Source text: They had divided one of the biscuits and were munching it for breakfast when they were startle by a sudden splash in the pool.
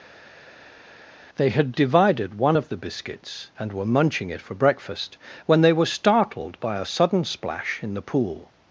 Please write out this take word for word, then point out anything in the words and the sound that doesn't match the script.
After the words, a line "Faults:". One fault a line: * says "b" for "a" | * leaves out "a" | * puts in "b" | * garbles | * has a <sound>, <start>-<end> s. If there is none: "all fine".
They had divided one of the biscuits and were munching it for breakfast when they were startled by a sudden splash in the pool.
Faults:
* says "startled" for "startle"